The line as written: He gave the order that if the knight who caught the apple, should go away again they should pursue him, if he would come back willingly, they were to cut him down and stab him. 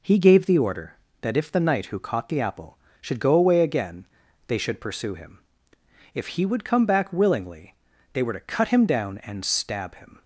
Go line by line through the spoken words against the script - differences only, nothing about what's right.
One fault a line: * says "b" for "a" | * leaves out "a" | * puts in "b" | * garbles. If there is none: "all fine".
all fine